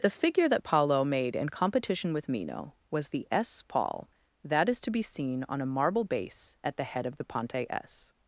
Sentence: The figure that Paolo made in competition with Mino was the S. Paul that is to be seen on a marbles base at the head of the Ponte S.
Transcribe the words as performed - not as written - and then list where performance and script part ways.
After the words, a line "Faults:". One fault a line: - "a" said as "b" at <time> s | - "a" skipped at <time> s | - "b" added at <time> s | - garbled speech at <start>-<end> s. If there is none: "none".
The figure that Paolo made in competition with Mino was the S. Paul that is to be seen on a marble base at the head of the Ponte S.
Faults:
- "marbles" said as "marble" at 5.6 s